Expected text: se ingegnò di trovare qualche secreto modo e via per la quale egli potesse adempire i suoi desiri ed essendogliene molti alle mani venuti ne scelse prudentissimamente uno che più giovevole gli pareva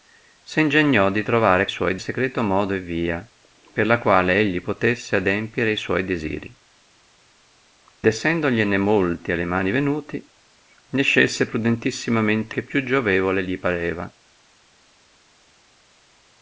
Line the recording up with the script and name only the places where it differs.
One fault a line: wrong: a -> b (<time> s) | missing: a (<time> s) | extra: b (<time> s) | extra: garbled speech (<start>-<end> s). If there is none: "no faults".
wrong: qualche -> suoi (1.7 s)
missing: ed (6.6 s)
missing: uno (12.6 s)